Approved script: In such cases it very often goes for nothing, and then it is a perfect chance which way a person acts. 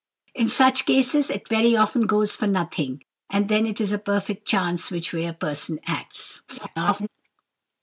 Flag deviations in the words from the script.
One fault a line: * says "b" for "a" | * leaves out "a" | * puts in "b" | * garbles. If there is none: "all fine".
* garbles